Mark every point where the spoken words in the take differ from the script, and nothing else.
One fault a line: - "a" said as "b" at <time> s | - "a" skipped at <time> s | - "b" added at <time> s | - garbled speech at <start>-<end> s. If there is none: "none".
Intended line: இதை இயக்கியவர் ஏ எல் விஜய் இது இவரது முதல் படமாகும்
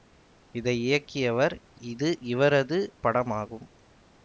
- "ஏ எல் விஜய்" skipped at 1.6 s
- "முதல்" skipped at 2.8 s